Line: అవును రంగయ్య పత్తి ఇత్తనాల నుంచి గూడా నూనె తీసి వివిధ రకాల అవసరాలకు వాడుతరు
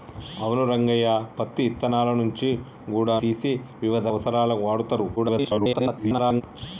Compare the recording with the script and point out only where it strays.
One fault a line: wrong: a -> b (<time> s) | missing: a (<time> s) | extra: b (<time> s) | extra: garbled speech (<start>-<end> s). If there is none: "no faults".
missing: నూనె (3.2 s)
missing: రకాల (4.1 s)
extra: garbled speech (5.2-6.4 s)